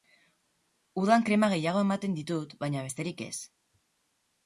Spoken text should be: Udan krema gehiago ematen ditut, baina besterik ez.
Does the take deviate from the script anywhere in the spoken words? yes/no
no